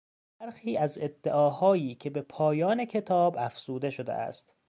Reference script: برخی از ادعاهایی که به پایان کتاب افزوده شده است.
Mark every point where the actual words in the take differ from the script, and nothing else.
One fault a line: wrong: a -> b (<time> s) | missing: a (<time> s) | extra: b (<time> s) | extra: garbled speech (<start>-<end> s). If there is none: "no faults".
no faults